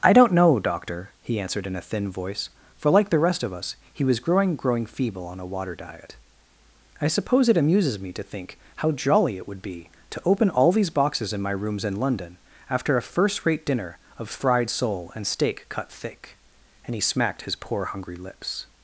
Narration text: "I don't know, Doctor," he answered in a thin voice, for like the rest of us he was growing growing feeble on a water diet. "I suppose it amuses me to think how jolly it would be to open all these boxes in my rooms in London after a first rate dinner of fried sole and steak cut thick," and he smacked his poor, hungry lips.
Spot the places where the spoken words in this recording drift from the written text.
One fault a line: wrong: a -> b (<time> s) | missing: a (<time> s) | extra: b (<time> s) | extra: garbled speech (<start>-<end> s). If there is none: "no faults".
no faults